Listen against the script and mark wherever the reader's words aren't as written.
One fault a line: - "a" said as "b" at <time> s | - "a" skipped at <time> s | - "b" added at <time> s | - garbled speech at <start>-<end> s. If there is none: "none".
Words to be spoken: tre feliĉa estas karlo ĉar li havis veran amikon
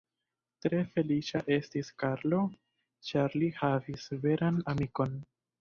- "estas" said as "estis" at 1.6 s